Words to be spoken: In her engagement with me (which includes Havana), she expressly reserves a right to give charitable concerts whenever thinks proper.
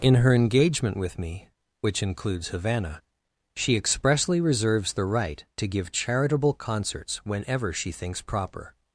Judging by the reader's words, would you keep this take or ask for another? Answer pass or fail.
fail